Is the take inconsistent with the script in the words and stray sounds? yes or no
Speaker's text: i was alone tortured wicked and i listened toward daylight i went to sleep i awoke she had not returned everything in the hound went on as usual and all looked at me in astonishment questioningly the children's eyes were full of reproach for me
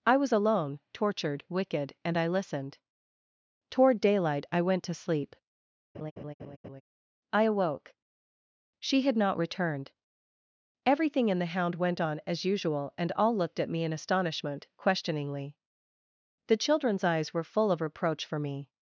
yes